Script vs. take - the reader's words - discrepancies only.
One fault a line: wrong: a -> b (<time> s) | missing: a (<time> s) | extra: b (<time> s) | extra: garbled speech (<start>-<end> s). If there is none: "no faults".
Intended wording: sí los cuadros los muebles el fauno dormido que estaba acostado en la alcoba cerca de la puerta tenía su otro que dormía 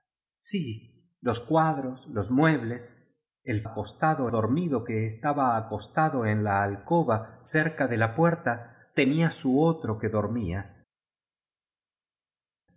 wrong: fauno -> acostado (3.6 s)